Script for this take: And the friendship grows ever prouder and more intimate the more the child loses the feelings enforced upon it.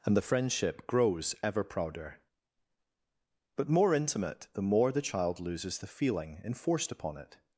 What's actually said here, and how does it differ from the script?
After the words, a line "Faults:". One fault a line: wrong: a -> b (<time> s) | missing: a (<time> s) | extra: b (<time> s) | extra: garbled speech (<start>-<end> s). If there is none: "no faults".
And the friendship grows ever prouder but more intimate the more the child loses the feeling enforced upon it.
Faults:
wrong: and -> but (3.6 s)
wrong: feelings -> feeling (5.8 s)